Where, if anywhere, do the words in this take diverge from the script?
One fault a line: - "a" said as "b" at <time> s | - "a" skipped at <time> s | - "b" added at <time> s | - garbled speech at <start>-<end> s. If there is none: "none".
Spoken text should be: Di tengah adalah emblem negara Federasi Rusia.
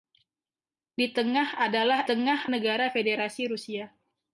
- "emblem" said as "tengah" at 2.0 s